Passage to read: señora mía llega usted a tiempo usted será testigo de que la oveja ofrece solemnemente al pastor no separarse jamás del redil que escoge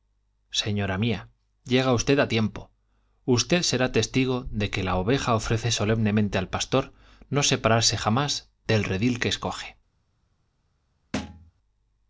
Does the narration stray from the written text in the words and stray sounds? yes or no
yes